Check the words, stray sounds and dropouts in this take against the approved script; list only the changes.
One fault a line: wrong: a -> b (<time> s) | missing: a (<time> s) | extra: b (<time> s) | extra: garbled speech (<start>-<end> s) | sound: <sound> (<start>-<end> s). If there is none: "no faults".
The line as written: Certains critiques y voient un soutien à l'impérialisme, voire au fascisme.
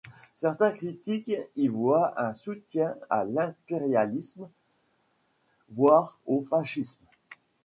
no faults